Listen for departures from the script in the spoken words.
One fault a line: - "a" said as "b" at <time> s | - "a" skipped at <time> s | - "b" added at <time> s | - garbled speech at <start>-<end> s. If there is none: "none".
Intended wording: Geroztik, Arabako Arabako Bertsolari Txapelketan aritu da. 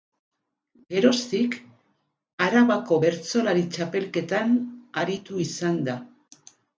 - "Arabako" skipped at 3.0 s
- "izan" added at 5.5 s